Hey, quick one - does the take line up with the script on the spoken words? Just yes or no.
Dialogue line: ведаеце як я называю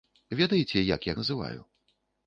yes